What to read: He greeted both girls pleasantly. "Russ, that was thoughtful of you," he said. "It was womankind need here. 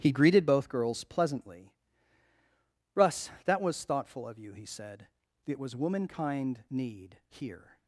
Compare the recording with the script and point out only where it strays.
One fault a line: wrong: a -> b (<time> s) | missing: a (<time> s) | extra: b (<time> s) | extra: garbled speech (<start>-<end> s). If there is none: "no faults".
no faults